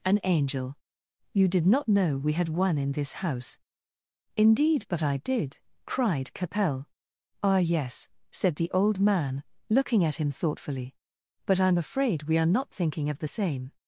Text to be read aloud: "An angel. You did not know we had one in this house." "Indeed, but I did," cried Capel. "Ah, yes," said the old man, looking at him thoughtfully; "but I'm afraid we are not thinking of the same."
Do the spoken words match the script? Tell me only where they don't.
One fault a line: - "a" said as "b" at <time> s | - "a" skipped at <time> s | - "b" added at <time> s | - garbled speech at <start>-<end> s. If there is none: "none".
none